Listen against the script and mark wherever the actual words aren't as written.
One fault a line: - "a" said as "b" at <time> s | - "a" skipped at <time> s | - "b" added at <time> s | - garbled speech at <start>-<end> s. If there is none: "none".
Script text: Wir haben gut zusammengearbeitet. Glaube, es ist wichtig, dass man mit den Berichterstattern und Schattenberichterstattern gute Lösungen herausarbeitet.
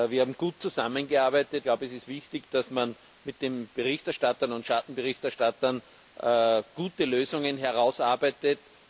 none